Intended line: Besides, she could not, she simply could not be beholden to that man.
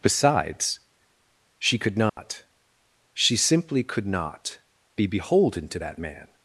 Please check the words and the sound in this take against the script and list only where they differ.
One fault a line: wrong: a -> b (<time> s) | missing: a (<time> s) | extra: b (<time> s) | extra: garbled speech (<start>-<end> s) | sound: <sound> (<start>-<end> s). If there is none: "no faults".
sound: dropout (2.1-2.2 s)